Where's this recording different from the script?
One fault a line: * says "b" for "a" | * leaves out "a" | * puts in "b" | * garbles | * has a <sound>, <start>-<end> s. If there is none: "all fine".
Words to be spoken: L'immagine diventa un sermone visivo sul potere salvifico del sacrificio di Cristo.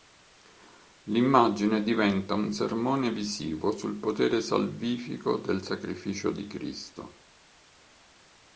all fine